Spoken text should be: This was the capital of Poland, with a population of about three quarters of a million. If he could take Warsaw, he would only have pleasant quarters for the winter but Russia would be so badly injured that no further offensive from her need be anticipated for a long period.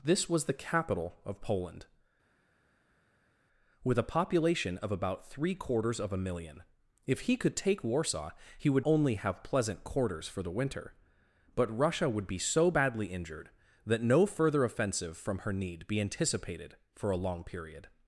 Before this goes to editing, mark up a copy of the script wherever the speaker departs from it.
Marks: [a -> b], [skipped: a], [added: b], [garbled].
This was the capital of Poland, with a population of about three quarters of a million. If he could take Warsaw, he would only have pleasant quarters for the winter but Russia would be so badly injured that no further offensive from her need be anticipated for a long period.